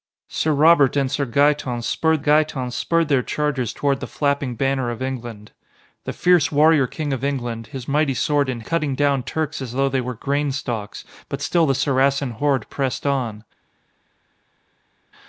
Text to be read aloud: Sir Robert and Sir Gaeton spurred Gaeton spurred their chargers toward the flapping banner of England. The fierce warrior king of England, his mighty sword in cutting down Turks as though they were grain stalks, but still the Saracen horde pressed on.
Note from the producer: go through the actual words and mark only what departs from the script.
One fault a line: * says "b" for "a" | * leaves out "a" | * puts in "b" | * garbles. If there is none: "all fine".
all fine